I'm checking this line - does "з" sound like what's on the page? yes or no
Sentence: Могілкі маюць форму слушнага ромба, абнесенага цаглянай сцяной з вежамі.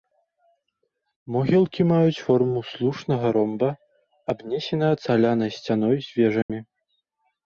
yes